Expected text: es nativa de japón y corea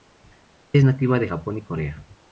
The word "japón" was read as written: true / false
true